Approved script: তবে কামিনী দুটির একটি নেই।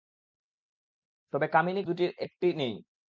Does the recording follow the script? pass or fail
pass